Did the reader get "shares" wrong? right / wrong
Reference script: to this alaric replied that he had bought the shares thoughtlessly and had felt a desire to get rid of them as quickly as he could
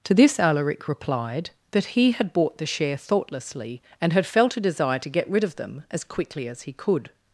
wrong